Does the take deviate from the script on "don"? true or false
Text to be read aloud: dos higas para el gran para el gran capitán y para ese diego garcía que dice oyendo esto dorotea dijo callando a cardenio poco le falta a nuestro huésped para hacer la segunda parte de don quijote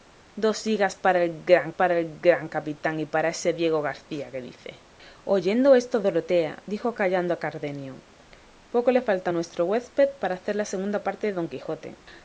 false